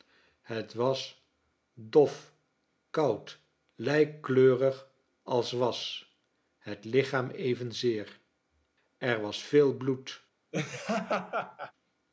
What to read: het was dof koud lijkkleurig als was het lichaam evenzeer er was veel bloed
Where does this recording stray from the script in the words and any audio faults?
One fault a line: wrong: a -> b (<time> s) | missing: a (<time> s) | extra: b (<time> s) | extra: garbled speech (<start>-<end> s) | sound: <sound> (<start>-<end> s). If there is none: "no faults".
sound: laugh (10.5-11.7 s)